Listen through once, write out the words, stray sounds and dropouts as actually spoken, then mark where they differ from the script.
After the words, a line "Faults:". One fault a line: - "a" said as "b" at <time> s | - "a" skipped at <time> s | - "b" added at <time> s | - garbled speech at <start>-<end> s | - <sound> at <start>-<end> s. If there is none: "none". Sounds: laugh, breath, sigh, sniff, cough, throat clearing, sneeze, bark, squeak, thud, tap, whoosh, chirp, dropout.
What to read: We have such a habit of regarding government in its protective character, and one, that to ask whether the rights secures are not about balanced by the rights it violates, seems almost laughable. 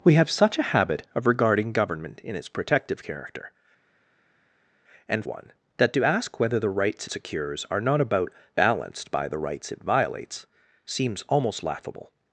We have such a habit of regarding government in its protective character, and one, that to ask whether the rights secures are not about balanced by the rights it violates, seems almost laughable.
Faults:
none